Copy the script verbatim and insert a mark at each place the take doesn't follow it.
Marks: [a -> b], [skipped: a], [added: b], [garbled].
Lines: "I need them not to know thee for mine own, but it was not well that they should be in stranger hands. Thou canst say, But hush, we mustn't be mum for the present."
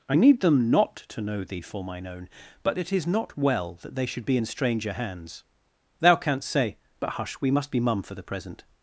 "I need them not to know thee for mine own, but it [was -> is] not well that they should be in stranger hands. Thou canst say, But hush, we [mustn't -> must] be mum for the present."